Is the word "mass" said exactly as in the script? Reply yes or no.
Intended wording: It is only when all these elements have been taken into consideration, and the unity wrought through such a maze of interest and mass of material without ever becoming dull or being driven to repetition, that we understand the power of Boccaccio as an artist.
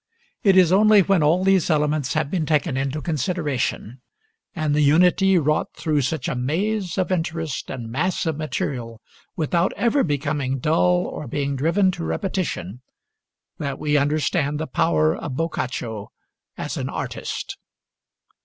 yes